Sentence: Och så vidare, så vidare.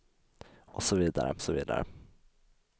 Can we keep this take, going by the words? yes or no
yes